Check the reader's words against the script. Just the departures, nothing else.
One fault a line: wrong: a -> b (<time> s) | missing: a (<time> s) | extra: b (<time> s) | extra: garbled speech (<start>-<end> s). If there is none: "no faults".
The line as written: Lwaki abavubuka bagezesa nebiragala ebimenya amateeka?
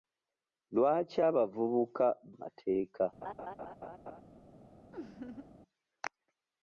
missing: bagezesa nebiragala ebimenya (2.1 s)